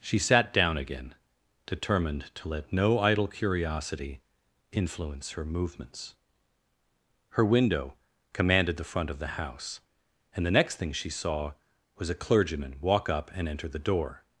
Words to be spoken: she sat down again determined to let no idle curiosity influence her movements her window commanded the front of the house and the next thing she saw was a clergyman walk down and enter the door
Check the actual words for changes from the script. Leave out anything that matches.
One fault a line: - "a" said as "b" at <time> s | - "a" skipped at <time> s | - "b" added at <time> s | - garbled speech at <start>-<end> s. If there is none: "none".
- "down" said as "up" at 13.1 s